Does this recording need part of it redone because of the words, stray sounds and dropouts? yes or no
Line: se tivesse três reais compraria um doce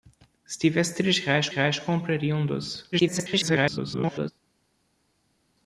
yes